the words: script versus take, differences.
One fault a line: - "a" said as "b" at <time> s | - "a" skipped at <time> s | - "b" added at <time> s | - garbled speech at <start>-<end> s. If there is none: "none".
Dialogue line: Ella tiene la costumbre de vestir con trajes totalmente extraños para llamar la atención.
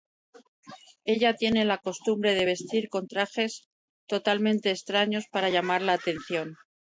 none